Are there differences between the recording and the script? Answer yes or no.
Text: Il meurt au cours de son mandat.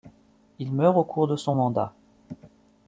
no